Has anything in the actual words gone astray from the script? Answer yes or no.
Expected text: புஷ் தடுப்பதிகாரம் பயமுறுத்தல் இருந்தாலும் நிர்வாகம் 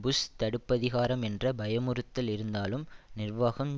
yes